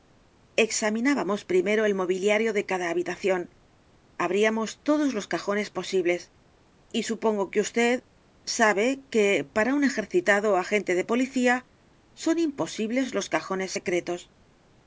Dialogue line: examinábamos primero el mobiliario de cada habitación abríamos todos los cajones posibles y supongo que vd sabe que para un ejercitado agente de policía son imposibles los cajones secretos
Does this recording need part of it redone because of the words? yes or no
no